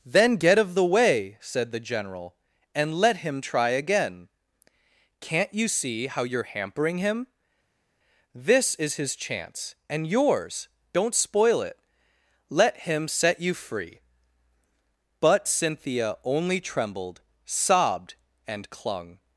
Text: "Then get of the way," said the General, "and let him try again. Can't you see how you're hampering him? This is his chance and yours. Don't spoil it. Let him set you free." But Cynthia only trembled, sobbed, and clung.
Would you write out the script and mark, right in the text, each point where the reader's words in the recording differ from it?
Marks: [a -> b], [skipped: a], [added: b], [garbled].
"Then get of the way," said the General, "and let him try again. Can't you see how you're hampering him? This is his chance and yours. Don't spoil it. Let him set you free." But Cynthia only trembled, sobbed, and clung.